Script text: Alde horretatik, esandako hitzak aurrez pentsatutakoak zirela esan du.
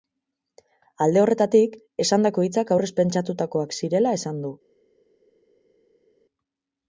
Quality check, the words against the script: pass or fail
pass